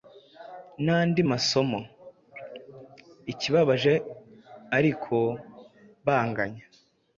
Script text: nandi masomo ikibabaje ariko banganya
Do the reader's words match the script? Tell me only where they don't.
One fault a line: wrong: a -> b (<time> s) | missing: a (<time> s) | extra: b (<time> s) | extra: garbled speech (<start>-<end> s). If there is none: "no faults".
no faults